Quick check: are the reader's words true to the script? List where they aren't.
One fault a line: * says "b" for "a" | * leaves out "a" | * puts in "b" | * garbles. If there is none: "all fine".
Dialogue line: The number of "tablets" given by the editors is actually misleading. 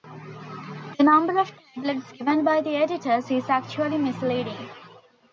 all fine